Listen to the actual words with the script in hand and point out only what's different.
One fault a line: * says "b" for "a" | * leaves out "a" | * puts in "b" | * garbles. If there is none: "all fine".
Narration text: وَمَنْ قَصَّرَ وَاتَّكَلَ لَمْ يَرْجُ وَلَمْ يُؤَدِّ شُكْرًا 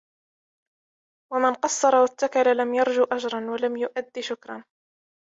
* puts in "أَجْرًا"